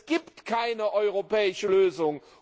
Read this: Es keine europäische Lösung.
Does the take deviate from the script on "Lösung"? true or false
false